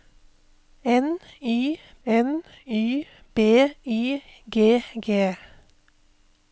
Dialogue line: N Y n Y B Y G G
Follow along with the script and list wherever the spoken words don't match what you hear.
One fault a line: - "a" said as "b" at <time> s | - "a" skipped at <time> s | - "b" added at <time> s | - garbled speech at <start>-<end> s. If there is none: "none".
none